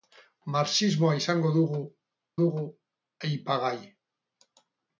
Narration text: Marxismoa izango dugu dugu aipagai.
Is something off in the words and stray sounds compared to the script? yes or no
no